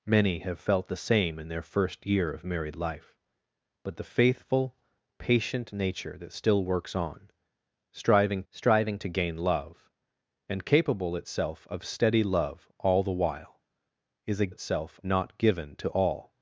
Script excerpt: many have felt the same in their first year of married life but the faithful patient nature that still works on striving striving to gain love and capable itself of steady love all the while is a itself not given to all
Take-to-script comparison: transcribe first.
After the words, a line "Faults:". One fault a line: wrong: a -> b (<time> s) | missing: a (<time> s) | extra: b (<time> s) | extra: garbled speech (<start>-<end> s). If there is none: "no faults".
many have felt the same in their first year of married life but the faithful patient nature that still works on striving striving to gain love and capable itself of steady love all the while is a itself not given to all
Faults:
no faults